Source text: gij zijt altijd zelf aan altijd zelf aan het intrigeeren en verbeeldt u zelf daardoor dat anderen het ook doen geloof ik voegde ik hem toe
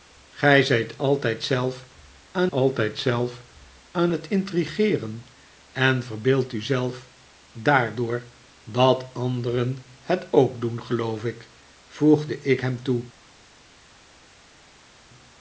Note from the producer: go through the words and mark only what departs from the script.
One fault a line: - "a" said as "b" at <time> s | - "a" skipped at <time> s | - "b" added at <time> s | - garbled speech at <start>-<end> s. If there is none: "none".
none